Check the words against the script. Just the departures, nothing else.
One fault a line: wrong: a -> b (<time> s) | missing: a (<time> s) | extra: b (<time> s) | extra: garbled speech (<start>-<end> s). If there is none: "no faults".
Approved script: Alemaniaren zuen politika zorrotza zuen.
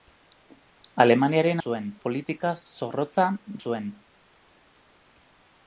no faults